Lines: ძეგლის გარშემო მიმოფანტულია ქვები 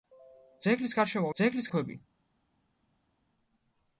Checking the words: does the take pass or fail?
fail